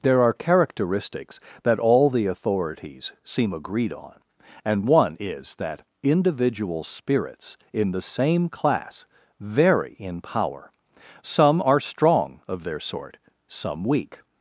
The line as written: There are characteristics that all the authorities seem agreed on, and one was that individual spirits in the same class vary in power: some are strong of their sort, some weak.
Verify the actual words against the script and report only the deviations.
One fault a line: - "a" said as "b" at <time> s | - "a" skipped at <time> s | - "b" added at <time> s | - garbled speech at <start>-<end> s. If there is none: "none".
- "was" said as "is" at 5.2 s